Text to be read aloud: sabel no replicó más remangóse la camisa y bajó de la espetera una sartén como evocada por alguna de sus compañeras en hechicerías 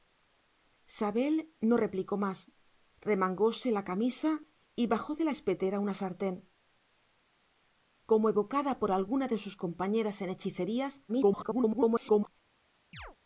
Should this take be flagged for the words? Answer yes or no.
yes